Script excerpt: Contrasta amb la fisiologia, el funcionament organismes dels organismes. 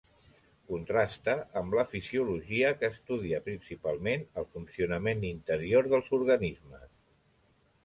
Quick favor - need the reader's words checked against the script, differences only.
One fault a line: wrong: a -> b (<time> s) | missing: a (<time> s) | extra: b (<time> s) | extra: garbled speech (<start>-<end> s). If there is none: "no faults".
extra: que estudia principalment (2.8 s)
wrong: organismes -> interior (5.3 s)